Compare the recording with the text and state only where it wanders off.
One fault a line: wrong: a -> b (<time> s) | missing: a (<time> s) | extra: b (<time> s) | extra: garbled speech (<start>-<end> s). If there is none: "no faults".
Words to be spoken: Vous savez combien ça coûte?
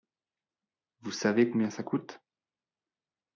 no faults